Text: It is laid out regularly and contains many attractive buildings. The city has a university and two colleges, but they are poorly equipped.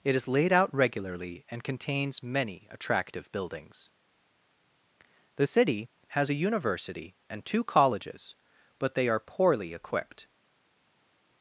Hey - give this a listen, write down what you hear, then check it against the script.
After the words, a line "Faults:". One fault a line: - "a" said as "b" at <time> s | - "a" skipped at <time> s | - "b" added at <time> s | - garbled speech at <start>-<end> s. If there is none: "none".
It is laid out regularly and contains many attractive buildings. The city has a university and two colleges, but they are poorly equipped.
Faults:
none